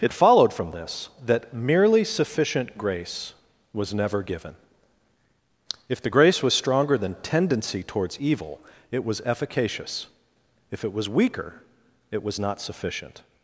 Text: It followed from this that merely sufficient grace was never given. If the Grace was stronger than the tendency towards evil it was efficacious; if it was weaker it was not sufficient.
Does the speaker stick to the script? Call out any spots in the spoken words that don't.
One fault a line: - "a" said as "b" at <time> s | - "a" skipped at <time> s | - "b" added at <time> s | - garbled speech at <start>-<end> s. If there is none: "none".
- "the" skipped at 7.1 s